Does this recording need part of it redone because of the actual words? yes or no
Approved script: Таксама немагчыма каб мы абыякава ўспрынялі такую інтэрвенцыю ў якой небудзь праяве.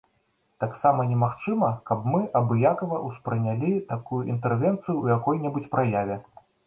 no